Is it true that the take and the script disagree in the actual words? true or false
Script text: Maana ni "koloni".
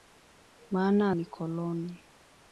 false